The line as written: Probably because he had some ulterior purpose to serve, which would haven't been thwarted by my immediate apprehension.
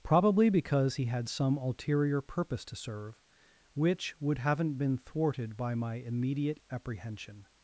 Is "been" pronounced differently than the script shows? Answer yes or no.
no